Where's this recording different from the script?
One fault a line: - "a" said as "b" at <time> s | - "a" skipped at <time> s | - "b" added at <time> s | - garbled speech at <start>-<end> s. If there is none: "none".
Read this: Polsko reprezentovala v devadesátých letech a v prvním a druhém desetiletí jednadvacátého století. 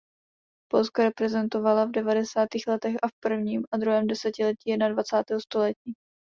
none